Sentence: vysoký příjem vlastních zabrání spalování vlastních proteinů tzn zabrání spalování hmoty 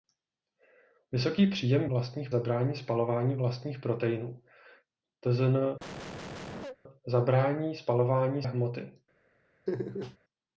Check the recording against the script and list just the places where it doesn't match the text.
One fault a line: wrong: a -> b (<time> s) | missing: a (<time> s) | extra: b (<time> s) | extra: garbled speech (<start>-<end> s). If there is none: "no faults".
no faults